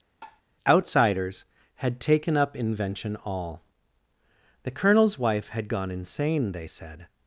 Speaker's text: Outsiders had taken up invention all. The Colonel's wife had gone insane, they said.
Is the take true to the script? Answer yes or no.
yes